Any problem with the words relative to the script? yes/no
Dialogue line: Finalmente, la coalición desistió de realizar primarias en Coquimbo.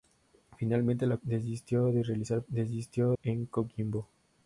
yes